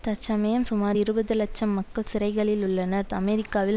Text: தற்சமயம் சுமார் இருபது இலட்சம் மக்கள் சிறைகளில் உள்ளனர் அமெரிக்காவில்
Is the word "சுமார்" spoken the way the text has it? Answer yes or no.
yes